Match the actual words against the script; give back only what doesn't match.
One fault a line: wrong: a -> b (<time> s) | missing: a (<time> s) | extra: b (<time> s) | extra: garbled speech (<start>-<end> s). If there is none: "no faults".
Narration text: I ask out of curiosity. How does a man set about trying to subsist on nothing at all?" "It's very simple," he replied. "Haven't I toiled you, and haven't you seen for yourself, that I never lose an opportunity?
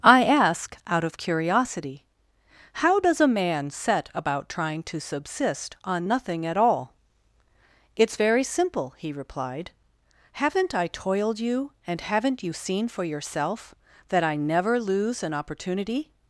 no faults